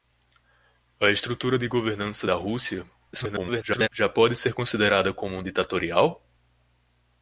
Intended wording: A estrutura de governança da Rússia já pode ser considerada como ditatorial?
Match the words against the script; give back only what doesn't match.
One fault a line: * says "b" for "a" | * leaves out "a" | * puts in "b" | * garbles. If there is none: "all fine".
* garbles